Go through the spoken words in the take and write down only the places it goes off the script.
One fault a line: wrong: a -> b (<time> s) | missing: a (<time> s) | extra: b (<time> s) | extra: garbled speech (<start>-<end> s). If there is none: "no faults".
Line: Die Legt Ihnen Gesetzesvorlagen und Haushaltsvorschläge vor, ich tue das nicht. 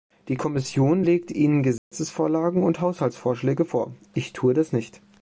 extra: Kommission (0.4 s)